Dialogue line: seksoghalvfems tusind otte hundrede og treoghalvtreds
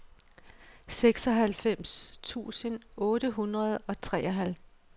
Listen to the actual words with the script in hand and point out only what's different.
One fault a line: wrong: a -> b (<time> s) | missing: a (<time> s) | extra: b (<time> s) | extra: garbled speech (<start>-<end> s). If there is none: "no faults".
no faults